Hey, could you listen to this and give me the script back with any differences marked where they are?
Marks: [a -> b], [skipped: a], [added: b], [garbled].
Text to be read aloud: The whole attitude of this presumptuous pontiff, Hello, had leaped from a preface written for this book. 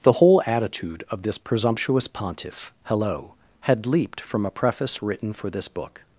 The whole attitude of this presumptuous pontiff, Hello, had leaped from a preface written for this book.